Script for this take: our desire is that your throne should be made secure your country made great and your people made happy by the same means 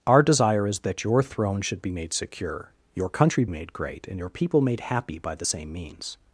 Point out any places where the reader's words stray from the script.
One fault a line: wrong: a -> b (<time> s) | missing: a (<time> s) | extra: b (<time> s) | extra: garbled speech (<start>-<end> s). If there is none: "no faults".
no faults